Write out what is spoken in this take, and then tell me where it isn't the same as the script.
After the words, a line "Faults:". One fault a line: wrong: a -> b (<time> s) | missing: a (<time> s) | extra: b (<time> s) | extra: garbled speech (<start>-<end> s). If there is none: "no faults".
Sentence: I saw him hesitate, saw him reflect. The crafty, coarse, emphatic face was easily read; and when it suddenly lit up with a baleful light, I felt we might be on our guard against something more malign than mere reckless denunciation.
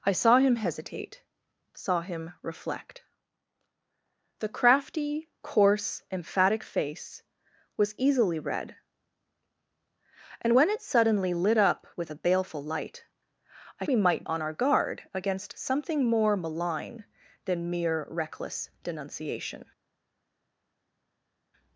I saw him hesitate, saw him reflect. The crafty, coarse, emphatic face was easily read; and when it suddenly lit up with a baleful light, I we might on our guard against something more malign than mere reckless denunciation.
Faults:
missing: felt (13.9 s)
missing: be (14.2 s)